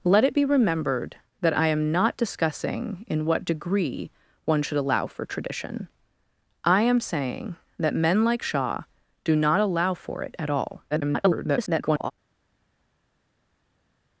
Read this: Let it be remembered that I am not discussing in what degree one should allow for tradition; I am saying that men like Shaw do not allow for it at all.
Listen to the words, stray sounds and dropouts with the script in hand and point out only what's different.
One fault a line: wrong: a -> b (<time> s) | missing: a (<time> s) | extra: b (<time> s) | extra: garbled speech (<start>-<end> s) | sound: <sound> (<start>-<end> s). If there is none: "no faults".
extra: garbled speech (10.9-12.1 s)